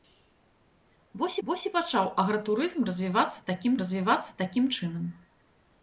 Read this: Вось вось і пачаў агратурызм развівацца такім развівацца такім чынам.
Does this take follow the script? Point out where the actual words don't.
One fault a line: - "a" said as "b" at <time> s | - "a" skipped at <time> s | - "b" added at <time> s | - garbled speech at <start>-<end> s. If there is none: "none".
none